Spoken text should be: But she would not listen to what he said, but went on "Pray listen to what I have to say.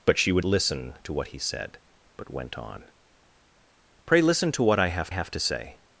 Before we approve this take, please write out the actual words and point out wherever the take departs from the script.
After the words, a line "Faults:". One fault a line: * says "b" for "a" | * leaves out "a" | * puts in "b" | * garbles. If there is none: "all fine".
But she would listen to what he said, but went on "Pray listen to what I have have to say.
Faults:
* leaves out "not"
* puts in "have"